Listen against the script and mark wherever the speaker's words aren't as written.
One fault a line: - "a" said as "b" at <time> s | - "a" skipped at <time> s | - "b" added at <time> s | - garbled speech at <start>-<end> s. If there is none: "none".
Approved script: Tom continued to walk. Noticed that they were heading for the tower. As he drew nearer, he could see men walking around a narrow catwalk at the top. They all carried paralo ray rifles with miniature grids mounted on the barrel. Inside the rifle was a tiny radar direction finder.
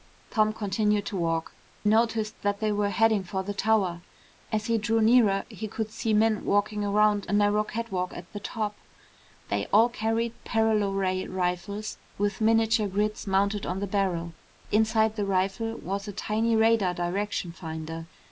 none